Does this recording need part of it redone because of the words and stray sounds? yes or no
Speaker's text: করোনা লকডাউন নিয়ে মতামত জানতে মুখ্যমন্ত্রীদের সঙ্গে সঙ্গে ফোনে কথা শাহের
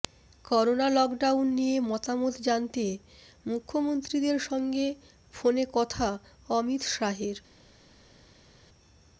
yes